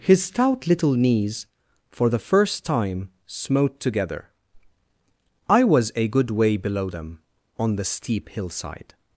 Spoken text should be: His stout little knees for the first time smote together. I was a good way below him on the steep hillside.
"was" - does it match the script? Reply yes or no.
yes